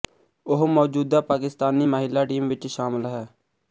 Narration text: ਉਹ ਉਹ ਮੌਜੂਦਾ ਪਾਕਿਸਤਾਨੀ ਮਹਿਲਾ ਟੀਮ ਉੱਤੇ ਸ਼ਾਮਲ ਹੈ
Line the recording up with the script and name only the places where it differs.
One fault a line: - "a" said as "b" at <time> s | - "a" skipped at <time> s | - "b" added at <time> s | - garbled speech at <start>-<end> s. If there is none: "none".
- "ਉਹ" skipped at 0.7 s
- "ਉੱਤੇ" said as "ਵਿੱਚ" at 2.5 s